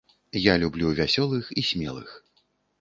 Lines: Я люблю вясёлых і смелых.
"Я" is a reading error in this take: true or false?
false